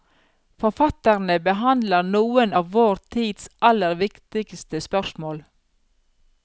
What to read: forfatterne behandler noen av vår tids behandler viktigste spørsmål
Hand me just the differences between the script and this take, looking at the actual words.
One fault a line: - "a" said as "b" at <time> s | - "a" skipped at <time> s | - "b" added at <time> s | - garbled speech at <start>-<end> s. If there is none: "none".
- "behandler" said as "aller" at 3.7 s